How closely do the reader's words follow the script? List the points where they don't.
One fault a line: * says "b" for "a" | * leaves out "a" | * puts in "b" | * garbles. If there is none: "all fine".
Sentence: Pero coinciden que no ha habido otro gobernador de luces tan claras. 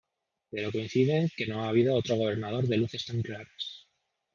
all fine